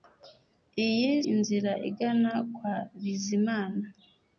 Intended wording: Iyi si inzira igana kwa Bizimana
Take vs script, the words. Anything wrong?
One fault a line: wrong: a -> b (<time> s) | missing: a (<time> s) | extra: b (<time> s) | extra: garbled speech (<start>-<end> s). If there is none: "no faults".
missing: si (1.1 s)